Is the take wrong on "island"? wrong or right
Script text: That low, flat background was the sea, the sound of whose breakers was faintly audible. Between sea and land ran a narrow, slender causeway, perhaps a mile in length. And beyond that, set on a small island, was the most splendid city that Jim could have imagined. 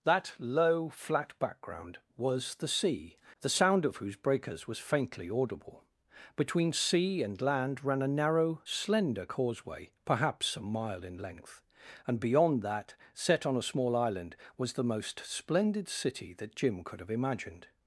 right